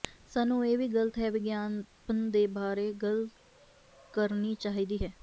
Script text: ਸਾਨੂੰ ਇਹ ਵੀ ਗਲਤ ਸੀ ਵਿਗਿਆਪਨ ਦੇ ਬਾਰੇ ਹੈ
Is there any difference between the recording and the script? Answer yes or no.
yes